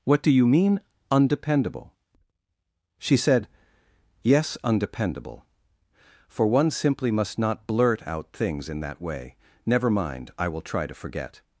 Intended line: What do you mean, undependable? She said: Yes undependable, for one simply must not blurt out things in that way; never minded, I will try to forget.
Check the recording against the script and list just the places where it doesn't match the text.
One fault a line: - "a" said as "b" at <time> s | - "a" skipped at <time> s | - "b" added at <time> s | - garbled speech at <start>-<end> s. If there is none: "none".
- "minded" said as "mind" at 9.9 s